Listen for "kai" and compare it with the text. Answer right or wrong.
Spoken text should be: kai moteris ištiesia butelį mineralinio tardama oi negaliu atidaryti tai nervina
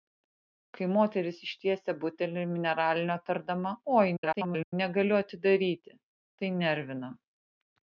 right